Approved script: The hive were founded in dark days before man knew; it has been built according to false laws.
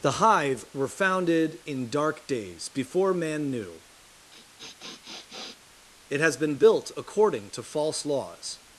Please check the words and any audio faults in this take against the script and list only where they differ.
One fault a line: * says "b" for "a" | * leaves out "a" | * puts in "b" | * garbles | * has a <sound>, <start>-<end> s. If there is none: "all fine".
* has a sniff, 4.3-5.6 s